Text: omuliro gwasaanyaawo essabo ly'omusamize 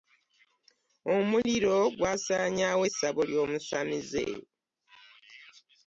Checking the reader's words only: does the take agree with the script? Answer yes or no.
yes